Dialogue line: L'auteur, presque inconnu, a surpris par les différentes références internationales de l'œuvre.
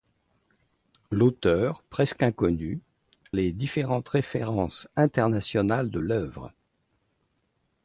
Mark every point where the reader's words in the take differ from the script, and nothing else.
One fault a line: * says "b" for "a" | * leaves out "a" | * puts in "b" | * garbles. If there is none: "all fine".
* leaves out "a surpris par"